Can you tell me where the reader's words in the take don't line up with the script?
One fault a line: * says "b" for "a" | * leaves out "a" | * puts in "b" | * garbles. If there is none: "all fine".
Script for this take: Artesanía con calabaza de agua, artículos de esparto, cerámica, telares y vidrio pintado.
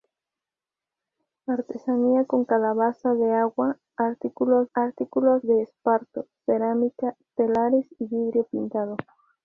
* puts in "artículos"